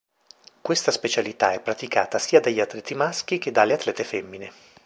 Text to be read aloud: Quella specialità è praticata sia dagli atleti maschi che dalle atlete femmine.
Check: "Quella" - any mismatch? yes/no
yes